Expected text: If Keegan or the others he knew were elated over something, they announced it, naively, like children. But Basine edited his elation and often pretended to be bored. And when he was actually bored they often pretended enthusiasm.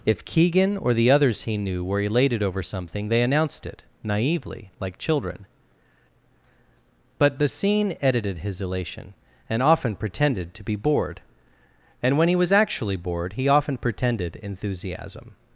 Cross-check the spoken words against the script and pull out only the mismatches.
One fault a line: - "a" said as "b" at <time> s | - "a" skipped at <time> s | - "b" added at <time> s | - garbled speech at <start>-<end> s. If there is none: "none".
- "they" said as "he" at 13.3 s